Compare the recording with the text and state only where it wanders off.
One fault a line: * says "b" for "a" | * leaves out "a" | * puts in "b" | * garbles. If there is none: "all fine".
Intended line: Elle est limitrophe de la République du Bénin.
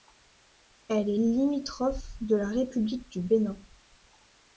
all fine